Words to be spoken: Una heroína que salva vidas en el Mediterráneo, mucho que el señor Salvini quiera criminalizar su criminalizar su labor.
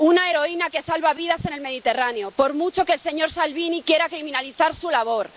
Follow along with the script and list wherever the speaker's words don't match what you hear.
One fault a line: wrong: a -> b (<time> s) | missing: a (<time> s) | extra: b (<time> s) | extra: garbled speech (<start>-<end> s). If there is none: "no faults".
extra: por (2.3 s)
missing: criminalizar su (4.9 s)